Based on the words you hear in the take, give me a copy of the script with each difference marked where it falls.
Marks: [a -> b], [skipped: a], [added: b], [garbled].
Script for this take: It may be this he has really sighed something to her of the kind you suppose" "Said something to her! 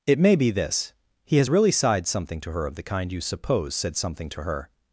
It may be this he has really sighed something to her of the kind you suppose" "Said something to her!